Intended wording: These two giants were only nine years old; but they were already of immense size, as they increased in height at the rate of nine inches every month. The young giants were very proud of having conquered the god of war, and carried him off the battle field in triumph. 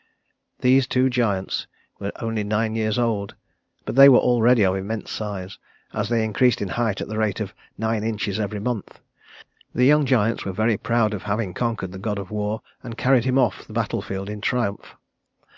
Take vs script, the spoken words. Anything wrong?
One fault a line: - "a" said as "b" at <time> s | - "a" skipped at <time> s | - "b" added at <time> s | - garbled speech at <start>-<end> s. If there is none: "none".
none